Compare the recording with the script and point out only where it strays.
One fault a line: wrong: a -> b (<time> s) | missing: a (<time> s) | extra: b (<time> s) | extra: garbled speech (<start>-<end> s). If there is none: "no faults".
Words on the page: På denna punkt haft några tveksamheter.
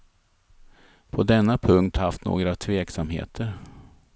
no faults